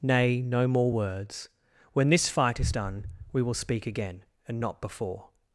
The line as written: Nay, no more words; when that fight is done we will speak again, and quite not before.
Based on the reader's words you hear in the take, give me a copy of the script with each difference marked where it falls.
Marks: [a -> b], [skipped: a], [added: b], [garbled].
Nay, no more words; when [that -> this] fight is done we will speak again, and [skipped: quite] not before.